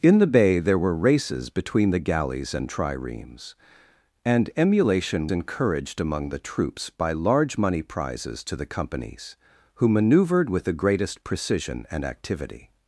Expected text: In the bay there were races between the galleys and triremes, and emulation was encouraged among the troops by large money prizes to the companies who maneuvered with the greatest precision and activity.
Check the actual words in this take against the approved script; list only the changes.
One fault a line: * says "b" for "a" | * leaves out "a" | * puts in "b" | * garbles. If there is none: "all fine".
* leaves out "was"